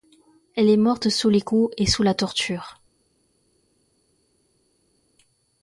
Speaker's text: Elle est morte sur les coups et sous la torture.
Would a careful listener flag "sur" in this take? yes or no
yes